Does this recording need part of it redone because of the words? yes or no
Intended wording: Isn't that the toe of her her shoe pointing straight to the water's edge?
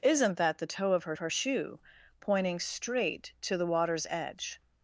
no